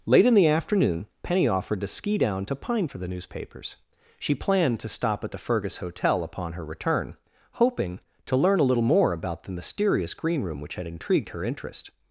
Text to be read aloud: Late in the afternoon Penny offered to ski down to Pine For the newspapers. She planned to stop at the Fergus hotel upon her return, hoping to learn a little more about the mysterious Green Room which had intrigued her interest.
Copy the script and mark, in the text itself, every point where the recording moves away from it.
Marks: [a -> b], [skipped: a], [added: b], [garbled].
Late in the afternoon Penny offered to ski down to Pine For the newspapers. She planned to stop at the Fergus hotel upon her return, hoping to learn a little more about the mysterious Green Room which had intrigued her interest.